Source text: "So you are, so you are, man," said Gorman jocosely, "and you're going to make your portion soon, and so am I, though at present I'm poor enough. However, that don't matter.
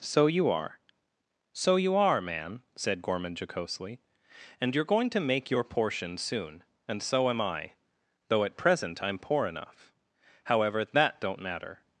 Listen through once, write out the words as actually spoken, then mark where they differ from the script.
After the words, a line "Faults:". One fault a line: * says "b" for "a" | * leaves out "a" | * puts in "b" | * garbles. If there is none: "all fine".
"So you are, so you are, man," said Gorman jocosely, "and you're going to make your portion soon, and so am I, though at present I'm poor enough. However, that don't matter.
Faults:
all fine